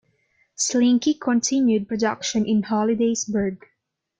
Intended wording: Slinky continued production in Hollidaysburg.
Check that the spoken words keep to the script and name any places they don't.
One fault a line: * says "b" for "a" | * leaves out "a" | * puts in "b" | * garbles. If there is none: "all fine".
all fine